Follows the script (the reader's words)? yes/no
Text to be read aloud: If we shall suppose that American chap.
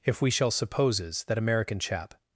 no